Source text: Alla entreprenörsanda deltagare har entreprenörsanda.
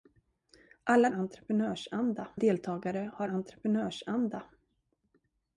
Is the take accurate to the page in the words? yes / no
yes